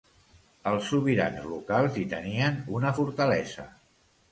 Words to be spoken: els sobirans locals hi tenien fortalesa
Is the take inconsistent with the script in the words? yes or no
yes